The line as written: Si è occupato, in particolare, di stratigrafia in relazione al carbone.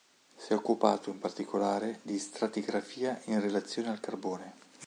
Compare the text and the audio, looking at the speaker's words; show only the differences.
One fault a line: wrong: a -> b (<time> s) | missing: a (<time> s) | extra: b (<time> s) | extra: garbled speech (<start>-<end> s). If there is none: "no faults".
no faults